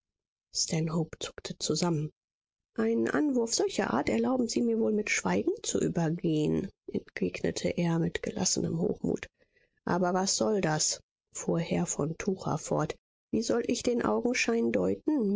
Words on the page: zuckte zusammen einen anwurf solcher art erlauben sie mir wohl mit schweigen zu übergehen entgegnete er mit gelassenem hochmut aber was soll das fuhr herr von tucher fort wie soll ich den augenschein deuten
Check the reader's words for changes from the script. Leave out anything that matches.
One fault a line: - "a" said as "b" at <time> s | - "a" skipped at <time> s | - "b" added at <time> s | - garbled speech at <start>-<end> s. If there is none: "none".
none